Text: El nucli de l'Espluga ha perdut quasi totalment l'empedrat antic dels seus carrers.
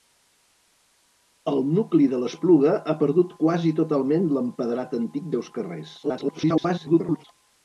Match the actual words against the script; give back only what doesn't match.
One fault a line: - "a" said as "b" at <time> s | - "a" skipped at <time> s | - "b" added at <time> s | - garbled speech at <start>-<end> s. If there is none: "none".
- "dels" skipped at 5.3 s
- garbled speech at 6.0-7.2 s